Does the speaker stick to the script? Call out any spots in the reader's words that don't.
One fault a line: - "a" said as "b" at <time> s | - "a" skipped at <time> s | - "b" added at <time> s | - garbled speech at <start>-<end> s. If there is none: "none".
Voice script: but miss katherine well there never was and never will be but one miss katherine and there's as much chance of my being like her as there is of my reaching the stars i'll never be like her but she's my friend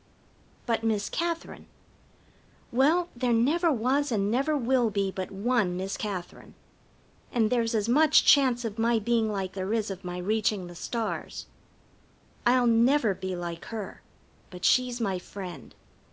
- "her as" skipped at 9.6 s